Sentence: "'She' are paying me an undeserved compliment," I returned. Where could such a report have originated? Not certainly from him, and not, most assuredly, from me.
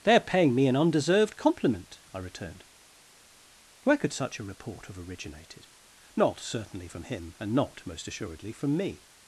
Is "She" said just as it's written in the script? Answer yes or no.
no